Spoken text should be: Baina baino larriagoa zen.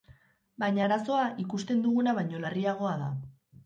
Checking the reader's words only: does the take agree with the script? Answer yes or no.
no